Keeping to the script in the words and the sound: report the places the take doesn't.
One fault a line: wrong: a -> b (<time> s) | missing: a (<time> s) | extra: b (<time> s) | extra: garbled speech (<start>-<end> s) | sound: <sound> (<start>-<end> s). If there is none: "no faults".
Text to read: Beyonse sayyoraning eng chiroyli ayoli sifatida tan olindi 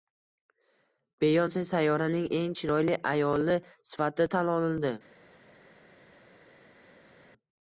no faults